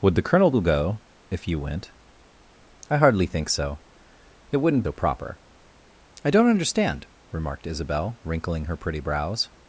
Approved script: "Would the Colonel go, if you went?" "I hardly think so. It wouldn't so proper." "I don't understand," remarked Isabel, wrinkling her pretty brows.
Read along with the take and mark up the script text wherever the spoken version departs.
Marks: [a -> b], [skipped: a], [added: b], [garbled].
"Would the Colonel go, if you went?" "I hardly think so. It wouldn't so proper." "I don't understand," remarked Isabel, wrinkling her pretty brows.